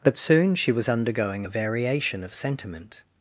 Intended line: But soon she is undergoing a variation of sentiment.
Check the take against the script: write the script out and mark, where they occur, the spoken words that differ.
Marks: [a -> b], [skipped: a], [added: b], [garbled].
But soon she [is -> was] undergoing a variation of sentiment.